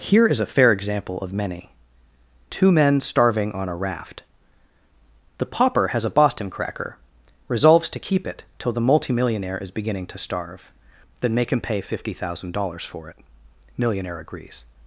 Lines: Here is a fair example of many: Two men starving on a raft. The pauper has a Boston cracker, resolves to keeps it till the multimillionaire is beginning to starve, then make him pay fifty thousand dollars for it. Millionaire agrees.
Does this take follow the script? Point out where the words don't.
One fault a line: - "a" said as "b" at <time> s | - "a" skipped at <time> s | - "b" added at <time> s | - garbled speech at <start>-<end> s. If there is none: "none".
- "keeps" said as "keep" at 8.1 s